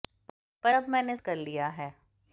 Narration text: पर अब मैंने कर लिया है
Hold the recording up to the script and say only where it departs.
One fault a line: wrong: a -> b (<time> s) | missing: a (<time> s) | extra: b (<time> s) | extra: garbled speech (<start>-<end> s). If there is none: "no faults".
no faults